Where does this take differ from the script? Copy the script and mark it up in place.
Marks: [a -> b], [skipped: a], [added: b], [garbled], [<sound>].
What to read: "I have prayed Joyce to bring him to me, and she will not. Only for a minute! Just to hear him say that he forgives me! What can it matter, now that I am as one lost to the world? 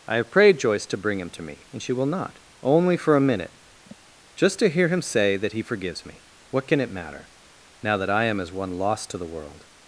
"I have prayed Joyce to bring him to me, and she will not. Only for a minute! [sigh] Just to hear him say that he forgives me! What can it matter, now that I am as one lost to the world?